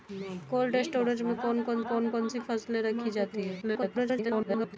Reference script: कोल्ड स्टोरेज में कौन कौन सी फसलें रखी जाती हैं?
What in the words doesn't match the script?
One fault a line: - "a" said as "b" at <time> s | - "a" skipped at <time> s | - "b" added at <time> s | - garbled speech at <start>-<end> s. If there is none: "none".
- "कौन कौन" added at 1.8 s
- garbled speech at 3.6-4.8 s